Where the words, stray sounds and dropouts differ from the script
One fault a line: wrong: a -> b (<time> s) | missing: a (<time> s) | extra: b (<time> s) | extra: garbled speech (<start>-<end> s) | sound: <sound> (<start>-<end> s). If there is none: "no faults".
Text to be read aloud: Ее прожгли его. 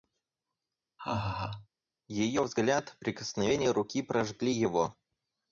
sound: laugh (1.0-1.7 s)
extra: взгляд прикосновение руки (2.4 s)